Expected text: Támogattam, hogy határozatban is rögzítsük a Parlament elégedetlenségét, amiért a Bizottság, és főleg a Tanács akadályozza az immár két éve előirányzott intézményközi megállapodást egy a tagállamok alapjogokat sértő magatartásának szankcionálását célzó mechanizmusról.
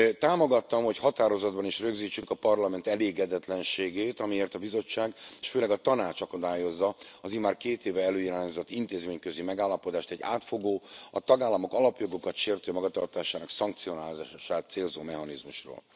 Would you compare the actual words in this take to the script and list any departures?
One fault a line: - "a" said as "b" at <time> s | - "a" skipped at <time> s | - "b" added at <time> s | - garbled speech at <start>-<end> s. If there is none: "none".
- "átfogó" added at 10.2 s